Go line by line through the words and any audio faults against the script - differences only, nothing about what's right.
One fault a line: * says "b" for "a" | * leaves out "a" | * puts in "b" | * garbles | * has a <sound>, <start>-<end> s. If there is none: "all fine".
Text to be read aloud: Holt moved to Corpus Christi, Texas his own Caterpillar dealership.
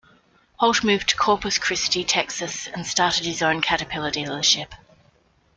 * puts in "and started"